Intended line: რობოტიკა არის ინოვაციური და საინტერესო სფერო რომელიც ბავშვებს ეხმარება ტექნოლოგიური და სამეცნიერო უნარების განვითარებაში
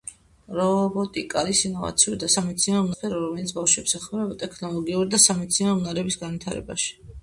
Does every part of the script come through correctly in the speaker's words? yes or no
no